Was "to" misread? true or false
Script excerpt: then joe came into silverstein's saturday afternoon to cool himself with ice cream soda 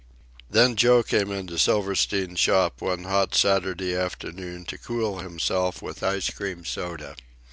false